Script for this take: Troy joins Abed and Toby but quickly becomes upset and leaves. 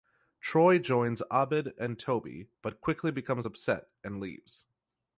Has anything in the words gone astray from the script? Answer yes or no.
no